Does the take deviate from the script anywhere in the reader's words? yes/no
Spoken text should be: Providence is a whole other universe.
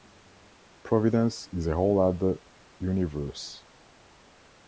no